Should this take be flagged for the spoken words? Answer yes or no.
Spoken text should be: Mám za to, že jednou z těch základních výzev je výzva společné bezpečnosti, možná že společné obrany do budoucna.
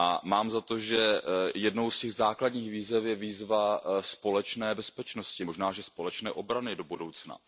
no